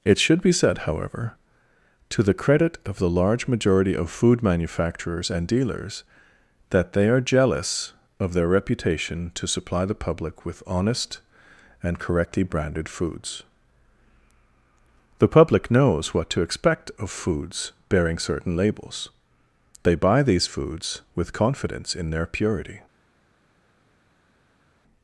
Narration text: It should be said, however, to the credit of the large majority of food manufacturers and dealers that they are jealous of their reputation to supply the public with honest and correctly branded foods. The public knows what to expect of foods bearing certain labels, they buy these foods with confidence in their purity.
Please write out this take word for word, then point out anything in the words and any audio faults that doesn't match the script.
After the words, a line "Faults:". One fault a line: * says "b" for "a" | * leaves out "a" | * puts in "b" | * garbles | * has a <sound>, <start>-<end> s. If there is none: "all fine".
It should be said, however, to the credit of the large majority of food manufacturers and dealers that they are jealous of their reputation to supply the public with honest and correctly branded foods. The public knows what to expect of foods bearing certain labels, they buy these foods with confidence in their purity.
Faults:
all fine